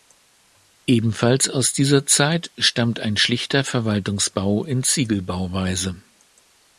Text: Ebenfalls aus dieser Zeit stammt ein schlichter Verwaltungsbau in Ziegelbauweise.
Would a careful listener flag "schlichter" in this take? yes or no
no